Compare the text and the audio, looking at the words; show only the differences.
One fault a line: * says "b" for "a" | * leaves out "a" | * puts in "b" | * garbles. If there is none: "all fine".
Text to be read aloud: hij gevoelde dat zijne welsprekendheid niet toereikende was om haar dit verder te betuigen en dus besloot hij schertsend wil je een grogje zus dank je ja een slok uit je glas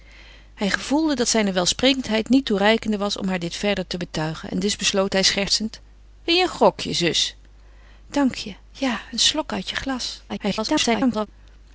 * garbles